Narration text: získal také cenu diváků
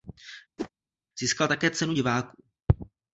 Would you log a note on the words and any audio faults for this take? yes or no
yes